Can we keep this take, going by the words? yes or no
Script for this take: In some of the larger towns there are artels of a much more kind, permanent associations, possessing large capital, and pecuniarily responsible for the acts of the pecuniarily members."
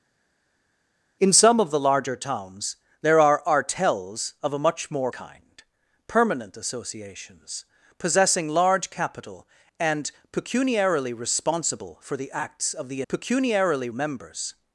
yes